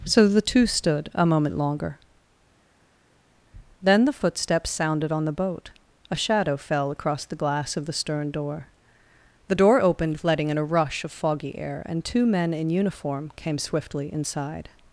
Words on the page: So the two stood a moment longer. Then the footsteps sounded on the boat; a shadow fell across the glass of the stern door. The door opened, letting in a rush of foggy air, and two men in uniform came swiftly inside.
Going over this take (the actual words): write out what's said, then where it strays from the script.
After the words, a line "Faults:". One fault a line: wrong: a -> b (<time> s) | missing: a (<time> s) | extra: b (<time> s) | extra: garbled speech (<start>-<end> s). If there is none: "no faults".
So the two stood a moment longer. Then the footsteps sounded on the boat; a shadow fell across the glass of the stern door. The door opened, letting in a rush of foggy air, and two men in uniform came swiftly inside.
Faults:
no faults